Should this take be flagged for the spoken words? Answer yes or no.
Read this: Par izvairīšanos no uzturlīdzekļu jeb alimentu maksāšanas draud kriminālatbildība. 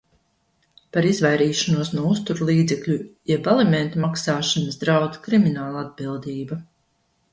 no